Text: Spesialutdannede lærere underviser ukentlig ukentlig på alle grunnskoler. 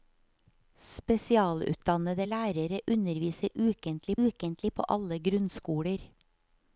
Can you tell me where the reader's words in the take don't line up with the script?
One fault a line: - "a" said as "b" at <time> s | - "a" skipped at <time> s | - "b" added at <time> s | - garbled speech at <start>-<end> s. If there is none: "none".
none